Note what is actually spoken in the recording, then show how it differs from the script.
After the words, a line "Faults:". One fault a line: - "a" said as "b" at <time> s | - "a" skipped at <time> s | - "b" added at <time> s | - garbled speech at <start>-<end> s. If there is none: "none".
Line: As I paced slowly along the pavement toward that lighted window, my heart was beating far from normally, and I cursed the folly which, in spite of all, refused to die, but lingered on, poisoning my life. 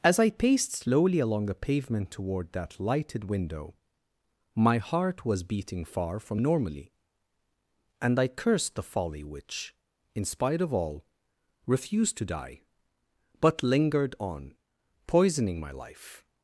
As I paced slowly along the pavement toward that lighted window, my heart was beating far from normally, and I cursed the folly which, in spite of all, refused to die, but lingered on, poisoning my life.
Faults:
none